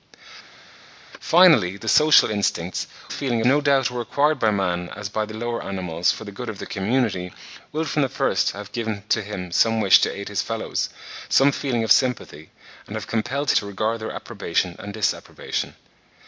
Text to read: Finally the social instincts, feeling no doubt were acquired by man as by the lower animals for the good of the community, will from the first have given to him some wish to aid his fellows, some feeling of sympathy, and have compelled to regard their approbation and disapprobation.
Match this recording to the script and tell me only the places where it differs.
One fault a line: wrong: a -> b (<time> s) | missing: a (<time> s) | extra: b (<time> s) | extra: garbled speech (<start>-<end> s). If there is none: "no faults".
no faults